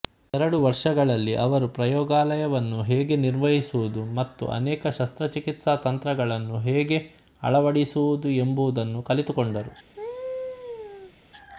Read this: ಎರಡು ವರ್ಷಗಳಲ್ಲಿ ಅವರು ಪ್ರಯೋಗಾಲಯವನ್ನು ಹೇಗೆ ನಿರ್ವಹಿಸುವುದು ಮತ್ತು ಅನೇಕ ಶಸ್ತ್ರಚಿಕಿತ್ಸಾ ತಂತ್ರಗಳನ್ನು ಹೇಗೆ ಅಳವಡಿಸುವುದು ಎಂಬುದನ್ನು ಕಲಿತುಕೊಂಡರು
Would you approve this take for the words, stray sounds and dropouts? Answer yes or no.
no